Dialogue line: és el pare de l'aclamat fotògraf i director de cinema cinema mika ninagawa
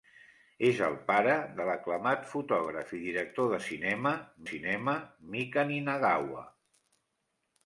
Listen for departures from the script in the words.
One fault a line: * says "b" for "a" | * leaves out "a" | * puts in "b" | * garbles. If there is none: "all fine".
all fine